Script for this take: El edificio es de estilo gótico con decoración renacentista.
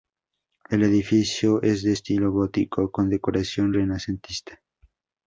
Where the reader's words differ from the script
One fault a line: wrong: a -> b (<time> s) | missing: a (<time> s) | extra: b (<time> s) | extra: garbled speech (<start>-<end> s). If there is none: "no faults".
no faults